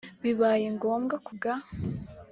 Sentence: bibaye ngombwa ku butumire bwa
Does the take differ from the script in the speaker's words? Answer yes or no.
yes